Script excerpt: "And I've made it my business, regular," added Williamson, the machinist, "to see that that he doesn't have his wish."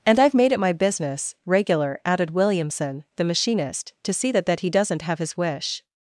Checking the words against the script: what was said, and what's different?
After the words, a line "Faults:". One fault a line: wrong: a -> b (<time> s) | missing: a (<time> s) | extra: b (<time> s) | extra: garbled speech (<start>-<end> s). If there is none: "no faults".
"And I've made it my business, regular," added Williamson, the machinist, "to see that that he doesn't have his wish."
Faults:
no faults